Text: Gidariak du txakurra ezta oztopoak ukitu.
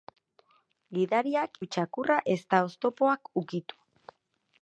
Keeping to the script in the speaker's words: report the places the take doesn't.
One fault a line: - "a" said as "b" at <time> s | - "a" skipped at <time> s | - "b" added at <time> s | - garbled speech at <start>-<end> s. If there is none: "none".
none